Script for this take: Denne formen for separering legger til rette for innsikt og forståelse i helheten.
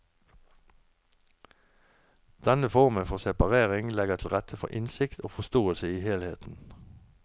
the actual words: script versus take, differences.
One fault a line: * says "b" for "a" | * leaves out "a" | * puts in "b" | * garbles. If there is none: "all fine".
all fine